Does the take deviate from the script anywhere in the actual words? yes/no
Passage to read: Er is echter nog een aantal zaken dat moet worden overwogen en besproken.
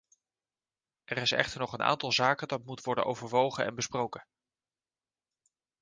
no